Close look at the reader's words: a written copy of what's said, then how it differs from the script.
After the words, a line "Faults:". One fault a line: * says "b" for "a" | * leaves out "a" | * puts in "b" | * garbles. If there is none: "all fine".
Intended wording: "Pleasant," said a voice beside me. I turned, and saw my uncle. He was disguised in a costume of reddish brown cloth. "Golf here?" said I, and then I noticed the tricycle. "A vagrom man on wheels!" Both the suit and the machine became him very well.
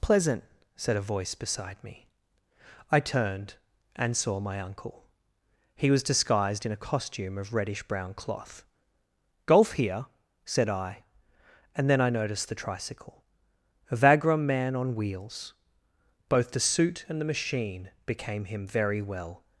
"Pleasant," said a voice beside me. I turned, and saw my uncle. He was disguised in a costume of reddish brown cloth. "Golf here?" said I, and then I noticed the tricycle. "A vagrom man on wheels!" Both the suit and the machine became him very well.
Faults:
all fine